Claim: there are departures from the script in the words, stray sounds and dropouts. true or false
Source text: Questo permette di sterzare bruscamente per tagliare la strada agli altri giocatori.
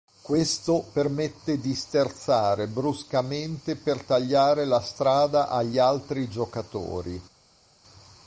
false